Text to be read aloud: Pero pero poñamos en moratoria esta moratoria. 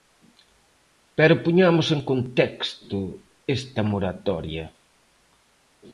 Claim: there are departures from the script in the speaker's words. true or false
true